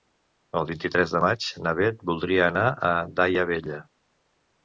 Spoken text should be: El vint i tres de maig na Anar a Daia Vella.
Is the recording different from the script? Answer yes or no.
yes